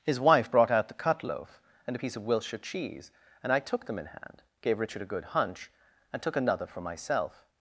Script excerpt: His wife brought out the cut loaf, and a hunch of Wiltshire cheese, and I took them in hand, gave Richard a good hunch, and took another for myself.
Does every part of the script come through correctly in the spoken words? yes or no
no